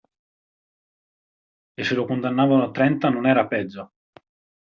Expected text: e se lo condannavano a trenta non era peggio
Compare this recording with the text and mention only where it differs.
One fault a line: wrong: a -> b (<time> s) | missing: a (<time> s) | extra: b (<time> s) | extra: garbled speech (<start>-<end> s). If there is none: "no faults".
no faults